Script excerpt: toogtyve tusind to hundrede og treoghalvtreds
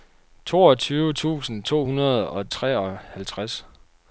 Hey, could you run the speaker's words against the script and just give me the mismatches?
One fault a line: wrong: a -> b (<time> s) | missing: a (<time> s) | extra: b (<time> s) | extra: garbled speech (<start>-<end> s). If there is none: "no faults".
no faults